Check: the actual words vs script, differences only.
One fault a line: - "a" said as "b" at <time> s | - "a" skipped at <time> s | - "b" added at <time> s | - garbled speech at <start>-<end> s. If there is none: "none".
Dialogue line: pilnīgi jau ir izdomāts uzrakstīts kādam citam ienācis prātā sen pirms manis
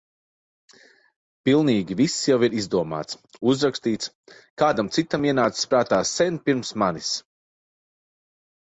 - "viss" added at 2.0 s